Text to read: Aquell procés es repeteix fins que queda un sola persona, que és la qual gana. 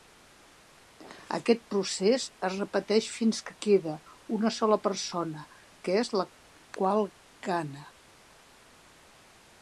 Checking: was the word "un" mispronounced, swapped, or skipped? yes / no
yes